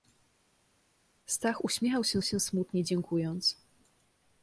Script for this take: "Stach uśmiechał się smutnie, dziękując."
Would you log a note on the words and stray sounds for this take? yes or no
yes